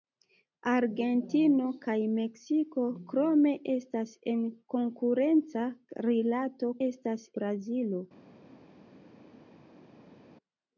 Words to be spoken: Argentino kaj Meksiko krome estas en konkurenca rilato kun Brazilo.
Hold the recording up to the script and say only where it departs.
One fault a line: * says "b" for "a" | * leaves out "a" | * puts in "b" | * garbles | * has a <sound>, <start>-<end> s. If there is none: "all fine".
* says "estas" for "kun"